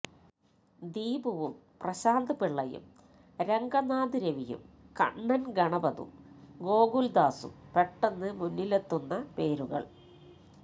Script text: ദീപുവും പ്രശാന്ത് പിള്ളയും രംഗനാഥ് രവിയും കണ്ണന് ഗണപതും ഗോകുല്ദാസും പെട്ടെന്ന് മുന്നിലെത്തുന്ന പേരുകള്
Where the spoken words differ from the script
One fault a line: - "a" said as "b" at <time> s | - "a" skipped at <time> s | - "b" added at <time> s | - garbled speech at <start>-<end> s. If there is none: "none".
none